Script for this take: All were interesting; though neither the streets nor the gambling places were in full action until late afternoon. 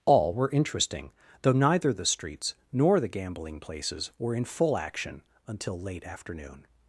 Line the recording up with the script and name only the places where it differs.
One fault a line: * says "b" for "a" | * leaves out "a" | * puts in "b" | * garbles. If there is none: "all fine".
all fine